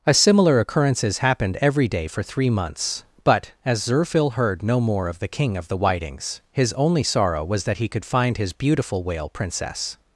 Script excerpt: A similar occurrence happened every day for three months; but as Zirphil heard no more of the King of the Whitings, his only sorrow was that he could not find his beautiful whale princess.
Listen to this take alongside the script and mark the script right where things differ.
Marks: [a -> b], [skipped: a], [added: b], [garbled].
A similar [occurrence -> occurrences] happened every day for three months; but as Zirphil heard no more of the King of the Whitings, his only sorrow was that he could [skipped: not] find his beautiful whale princess.